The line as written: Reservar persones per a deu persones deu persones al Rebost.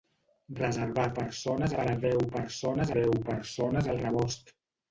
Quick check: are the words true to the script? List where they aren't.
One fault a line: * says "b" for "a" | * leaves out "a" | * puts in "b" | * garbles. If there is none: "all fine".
all fine